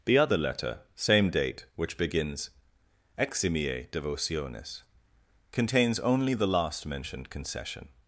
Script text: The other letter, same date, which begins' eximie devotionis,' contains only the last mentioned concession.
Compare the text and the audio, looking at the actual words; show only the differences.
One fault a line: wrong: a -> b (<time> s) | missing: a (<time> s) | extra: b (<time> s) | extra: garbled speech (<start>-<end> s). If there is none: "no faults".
no faults